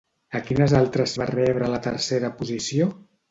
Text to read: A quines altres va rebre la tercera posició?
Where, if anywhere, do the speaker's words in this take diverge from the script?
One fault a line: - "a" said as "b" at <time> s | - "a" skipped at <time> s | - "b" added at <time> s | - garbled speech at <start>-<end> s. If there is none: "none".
none